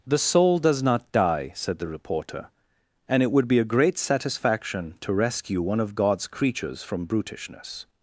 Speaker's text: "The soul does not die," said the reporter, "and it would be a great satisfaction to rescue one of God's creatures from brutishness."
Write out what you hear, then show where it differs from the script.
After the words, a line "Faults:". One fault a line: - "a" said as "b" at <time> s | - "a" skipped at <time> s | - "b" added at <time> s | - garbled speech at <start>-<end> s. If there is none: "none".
"The soul does not die," said the reporter, "and it would be a great satisfaction to rescue one of God's creatures from brutishness."
Faults:
none